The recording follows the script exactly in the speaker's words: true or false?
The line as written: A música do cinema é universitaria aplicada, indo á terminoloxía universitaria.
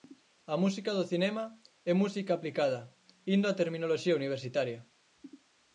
false